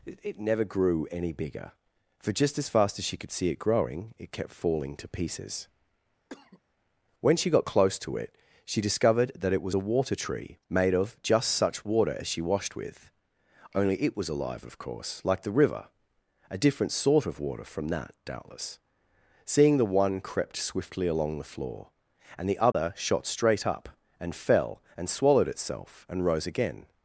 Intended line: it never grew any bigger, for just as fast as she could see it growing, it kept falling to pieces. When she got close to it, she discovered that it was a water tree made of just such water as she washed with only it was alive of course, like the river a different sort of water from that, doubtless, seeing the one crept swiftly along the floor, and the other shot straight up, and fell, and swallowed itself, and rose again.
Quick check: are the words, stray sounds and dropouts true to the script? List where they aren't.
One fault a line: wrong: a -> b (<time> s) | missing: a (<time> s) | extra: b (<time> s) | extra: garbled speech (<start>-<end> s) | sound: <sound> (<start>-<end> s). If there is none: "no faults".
sound: cough (6.3-6.6 s)
sound: dropout (22.7-22.7 s)